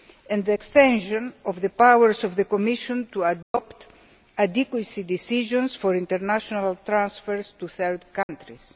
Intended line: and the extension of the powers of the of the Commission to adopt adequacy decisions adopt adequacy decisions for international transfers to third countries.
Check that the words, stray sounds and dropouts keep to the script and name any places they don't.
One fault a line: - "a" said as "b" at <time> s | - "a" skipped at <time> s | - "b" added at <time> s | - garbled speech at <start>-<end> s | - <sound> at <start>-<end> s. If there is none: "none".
- "of the" skipped at 2.4 s
- dropout at 3.4-3.5 s
- "adopt adequacy decisions" skipped at 5.7 s
- dropout at 8.2-8.3 s